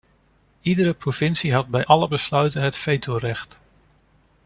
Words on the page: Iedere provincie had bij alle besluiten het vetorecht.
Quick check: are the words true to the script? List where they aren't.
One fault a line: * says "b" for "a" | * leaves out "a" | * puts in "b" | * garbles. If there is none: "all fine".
all fine